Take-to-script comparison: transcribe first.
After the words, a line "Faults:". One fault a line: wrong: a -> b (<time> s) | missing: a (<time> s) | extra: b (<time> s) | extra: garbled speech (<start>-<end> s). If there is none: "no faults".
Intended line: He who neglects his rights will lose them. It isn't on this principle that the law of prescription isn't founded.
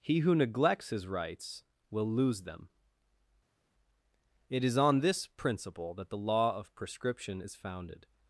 He who neglects his rights will lose them. It is on this principle that the law of prescription is founded.
Faults:
wrong: isn't -> is (4.6 s)
wrong: isn't -> is (7.4 s)